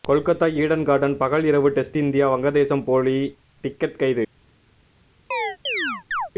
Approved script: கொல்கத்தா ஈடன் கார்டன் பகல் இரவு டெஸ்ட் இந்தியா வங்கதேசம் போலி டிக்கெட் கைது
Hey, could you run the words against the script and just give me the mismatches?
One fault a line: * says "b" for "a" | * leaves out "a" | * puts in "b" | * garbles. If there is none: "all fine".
all fine